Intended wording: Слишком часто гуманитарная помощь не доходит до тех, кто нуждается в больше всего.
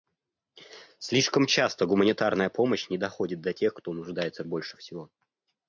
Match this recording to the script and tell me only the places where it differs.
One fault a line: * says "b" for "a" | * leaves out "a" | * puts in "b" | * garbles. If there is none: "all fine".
all fine